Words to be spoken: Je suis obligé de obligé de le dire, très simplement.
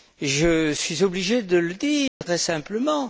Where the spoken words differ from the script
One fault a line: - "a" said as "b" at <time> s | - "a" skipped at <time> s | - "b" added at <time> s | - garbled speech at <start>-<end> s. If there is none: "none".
- "obligé de" skipped at 1.6 s